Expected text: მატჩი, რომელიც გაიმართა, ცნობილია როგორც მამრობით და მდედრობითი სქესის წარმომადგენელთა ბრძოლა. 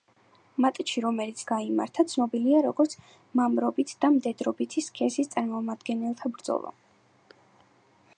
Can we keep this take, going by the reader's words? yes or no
yes